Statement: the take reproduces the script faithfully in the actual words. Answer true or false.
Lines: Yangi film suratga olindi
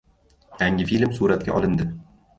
true